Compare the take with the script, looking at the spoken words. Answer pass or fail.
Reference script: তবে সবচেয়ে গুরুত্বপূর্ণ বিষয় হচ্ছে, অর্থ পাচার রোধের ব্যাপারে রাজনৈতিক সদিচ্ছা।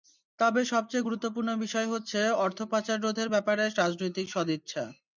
pass